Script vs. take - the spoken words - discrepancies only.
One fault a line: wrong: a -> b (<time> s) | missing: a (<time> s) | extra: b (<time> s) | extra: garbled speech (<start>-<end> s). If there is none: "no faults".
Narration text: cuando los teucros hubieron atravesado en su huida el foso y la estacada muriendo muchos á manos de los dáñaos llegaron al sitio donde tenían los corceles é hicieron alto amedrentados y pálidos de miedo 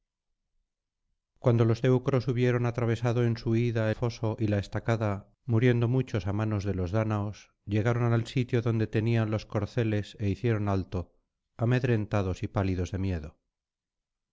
missing: el (3.9 s)